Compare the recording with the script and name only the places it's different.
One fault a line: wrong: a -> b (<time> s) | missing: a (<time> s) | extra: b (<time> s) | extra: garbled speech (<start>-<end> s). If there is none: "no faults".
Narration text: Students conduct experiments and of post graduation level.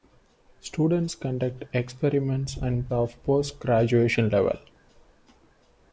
no faults